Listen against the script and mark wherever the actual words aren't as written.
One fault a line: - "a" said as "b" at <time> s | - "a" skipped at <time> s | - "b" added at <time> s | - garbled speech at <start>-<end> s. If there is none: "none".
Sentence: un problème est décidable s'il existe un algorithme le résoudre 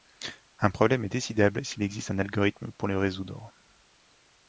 - "pour" added at 2.8 s